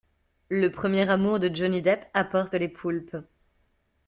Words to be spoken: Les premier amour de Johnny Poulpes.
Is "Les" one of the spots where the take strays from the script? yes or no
yes